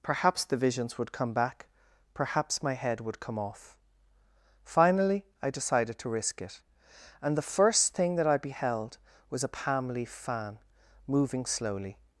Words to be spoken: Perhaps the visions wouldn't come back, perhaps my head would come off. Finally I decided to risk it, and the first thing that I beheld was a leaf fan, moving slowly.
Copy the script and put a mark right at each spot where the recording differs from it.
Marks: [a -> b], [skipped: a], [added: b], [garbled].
Perhaps the visions [wouldn't -> would] come back, perhaps my head would come off. Finally I decided to risk it, and the first thing that I beheld was a [added: palm] leaf fan, moving slowly.